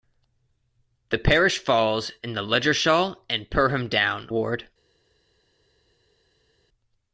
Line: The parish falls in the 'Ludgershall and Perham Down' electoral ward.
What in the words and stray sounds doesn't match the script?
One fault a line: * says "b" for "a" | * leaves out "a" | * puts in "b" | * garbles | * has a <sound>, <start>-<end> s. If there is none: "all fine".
* leaves out "electoral"